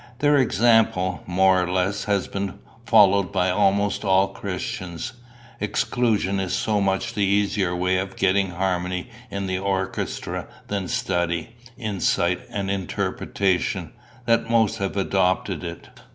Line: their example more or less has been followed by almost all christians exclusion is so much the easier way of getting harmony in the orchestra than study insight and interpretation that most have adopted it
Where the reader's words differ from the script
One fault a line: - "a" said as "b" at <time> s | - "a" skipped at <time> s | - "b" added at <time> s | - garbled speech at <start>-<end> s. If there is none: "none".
none